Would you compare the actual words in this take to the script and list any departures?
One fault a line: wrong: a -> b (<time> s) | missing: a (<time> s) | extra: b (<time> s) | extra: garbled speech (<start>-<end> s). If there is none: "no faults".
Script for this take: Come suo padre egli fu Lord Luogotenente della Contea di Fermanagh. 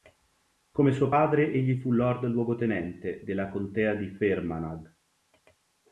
no faults